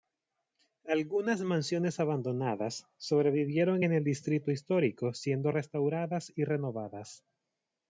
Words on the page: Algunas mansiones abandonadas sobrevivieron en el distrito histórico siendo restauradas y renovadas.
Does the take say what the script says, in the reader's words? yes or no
yes